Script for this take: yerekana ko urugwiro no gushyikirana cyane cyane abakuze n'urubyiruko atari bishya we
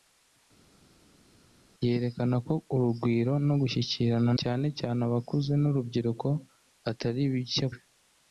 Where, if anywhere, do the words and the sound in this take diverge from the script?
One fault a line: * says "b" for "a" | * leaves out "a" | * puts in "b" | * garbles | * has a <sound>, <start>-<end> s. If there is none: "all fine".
all fine